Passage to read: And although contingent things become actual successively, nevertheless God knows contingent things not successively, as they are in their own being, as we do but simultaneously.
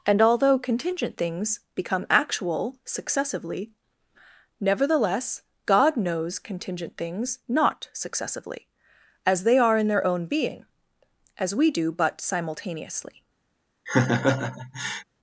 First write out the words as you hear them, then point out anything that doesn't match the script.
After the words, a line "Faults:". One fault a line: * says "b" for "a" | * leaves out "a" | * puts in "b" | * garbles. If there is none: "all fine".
And although contingent things become actual successively, nevertheless God knows contingent things not successively, as they are in their own being, as we do but simultaneously.
Faults:
all fine